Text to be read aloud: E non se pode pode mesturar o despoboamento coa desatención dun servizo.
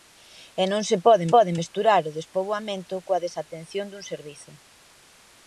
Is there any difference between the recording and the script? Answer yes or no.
no